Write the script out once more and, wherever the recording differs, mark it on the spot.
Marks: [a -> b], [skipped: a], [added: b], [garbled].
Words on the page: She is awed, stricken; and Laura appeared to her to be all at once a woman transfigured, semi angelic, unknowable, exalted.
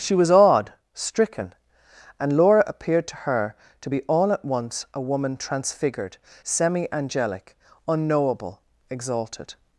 She [is -> was] awed, stricken; and Laura appeared to her to be all at once a woman transfigured, semi angelic, unknowable, exalted.